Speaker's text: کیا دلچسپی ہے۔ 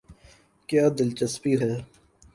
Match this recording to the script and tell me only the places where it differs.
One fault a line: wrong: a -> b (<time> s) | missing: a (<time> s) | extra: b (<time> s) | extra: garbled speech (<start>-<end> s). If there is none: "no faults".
no faults